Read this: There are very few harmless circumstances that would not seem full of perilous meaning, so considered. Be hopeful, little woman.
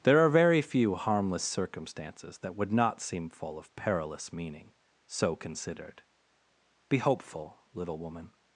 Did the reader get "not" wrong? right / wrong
right